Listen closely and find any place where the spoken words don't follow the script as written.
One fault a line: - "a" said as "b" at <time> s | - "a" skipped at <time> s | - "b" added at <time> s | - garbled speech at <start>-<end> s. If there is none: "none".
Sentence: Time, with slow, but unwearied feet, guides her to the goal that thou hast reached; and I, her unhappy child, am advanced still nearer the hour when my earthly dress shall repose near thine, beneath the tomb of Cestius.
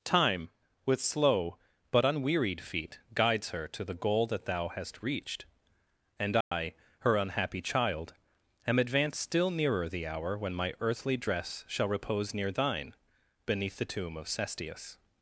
none